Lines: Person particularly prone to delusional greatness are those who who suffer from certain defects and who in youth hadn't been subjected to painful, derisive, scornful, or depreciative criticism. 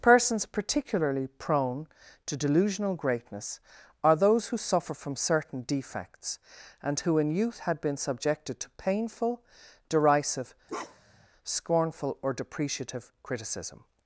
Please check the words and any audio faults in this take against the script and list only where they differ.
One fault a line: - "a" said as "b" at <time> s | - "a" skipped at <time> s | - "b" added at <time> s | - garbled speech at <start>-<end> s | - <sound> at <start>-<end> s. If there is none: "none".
- "Person" said as "Persons" at 0.0 s
- "who" skipped at 4.6 s
- "hadn't" said as "had" at 7.6 s
- bark at 10.7-11.3 s